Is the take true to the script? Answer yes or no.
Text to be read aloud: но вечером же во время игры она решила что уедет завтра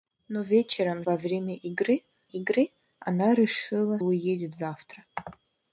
no